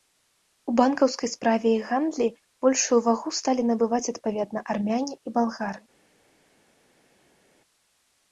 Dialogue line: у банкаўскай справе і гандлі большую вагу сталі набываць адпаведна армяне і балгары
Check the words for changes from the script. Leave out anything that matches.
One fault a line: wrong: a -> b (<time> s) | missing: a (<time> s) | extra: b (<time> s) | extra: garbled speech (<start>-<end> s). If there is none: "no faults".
no faults